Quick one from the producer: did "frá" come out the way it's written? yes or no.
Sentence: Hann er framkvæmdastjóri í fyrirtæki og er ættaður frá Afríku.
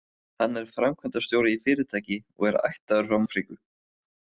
yes